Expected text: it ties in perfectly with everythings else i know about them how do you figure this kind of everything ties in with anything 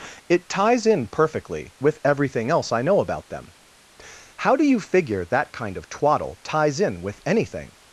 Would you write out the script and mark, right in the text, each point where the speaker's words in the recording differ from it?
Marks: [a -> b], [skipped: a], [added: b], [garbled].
it ties in perfectly with [everythings -> everything] else i know about them how do you figure [this -> that] kind of [everything -> twaddle] ties in with anything